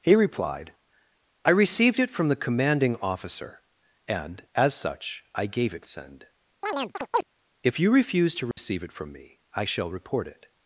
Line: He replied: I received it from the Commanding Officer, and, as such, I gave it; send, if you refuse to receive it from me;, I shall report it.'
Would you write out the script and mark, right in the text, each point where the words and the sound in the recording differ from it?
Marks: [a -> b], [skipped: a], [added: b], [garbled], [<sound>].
He replied: I received it from the Commanding Officer, and, as such, I gave it; send, [chirp] if you refuse to receive [dropout] it from me;, I shall report it.'